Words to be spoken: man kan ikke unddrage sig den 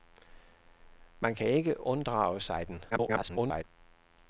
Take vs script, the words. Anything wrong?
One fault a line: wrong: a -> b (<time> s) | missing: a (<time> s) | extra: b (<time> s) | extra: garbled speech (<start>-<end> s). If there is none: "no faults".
extra: garbled speech (2.9-3.6 s)